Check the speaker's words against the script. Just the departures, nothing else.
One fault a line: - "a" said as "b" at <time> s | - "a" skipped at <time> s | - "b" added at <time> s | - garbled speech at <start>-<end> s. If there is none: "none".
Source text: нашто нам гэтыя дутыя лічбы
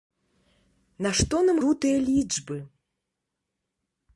- "гэтыя" skipped at 1.6 s